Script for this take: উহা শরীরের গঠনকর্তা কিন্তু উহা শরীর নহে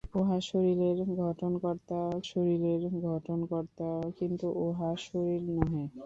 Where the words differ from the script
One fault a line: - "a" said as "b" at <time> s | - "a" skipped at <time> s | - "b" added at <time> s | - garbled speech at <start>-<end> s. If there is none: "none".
- "শরীরের গঠনকর্তা" added at 2.3 s